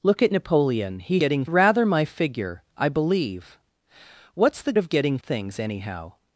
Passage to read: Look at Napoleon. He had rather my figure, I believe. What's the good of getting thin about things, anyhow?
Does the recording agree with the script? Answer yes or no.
no